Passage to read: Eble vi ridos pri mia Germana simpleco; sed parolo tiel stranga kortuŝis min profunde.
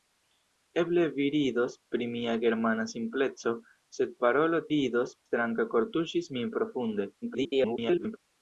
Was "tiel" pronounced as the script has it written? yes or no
no